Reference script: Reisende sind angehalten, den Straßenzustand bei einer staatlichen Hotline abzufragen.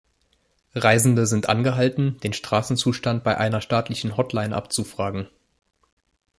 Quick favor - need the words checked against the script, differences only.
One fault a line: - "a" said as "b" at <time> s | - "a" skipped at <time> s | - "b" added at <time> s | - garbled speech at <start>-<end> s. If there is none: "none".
none